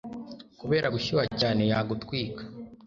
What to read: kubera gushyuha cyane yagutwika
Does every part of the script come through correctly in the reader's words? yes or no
yes